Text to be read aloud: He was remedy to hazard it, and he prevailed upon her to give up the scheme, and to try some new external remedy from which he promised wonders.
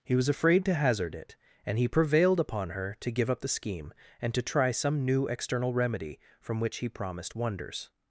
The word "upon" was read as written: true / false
true